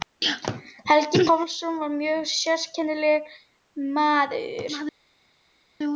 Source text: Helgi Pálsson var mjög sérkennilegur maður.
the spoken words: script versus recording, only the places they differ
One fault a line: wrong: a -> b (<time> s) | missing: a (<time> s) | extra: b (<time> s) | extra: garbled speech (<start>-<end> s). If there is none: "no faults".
no faults